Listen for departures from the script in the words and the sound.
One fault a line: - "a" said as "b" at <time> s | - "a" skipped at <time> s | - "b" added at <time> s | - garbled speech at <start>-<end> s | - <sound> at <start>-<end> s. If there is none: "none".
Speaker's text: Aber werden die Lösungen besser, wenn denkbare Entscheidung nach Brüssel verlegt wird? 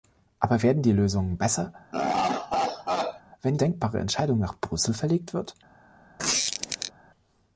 - laugh at 1.9-3.2 s
- squeak at 6.2-6.9 s